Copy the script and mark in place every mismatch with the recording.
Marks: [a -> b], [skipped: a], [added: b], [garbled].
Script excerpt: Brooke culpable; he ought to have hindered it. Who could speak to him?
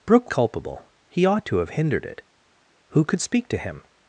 Brooke culpable; he ought to have hindered it. Who could speak to him?